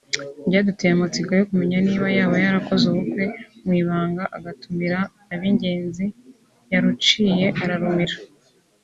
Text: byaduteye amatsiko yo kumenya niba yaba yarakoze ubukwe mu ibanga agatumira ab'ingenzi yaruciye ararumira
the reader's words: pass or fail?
pass